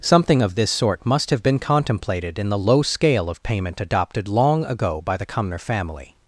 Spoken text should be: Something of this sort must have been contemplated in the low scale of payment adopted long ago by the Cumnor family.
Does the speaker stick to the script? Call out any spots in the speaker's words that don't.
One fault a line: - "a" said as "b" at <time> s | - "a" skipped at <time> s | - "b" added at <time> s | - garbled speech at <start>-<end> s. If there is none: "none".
none